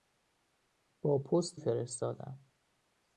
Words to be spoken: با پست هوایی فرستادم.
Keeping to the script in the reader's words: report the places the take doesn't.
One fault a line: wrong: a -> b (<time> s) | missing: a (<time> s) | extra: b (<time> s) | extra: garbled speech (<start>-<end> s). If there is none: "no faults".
missing: هوایی (1.6 s)